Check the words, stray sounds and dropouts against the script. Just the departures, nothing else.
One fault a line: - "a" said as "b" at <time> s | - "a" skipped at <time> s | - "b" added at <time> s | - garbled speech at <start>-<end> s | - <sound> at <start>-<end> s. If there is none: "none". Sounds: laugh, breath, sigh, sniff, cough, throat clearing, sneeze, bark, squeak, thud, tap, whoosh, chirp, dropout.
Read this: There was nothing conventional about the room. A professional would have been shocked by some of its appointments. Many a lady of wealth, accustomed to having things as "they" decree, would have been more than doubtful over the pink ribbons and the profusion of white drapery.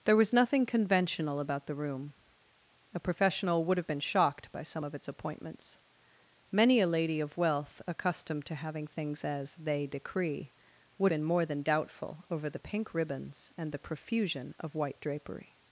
- "have" skipped at 11.1 s